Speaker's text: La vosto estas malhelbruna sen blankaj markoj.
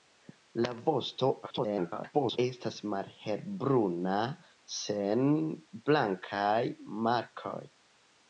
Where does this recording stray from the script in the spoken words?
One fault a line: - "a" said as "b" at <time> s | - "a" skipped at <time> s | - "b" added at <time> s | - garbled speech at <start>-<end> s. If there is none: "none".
- garbled speech at 1.4-2.4 s